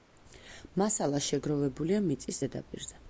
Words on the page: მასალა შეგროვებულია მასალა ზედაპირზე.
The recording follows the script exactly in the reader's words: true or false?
false